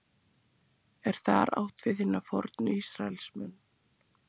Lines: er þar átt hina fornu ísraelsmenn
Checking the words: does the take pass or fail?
fail